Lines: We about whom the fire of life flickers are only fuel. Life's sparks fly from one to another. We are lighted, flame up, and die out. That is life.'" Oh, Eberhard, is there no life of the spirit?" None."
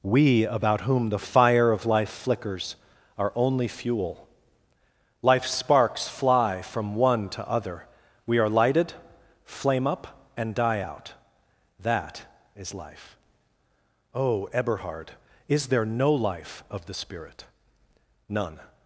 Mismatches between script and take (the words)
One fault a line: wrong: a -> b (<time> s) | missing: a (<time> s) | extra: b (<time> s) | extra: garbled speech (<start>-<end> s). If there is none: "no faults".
wrong: another -> other (7.5 s)